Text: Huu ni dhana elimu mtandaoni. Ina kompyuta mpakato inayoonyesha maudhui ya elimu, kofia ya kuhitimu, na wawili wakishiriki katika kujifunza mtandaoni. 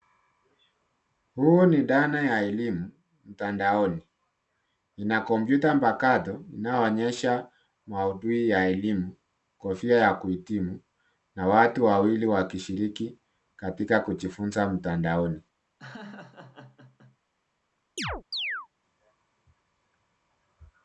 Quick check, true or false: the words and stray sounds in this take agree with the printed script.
false